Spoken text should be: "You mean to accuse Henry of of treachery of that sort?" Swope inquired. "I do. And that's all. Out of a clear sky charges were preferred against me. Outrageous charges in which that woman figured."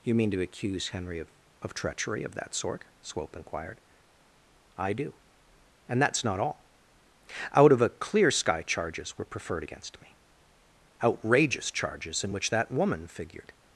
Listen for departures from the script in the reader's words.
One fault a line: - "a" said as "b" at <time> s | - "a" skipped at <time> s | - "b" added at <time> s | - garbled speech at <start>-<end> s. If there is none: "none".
- "not" added at 6.2 s